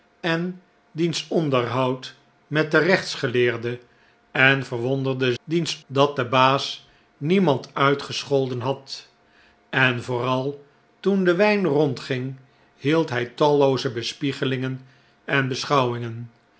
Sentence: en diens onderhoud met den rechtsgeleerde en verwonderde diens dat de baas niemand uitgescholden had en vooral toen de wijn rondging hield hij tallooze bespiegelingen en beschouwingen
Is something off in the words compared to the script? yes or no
no